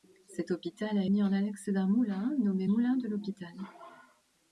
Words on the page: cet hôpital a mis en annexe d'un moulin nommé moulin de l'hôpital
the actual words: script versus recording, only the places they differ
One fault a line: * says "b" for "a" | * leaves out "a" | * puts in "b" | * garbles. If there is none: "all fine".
all fine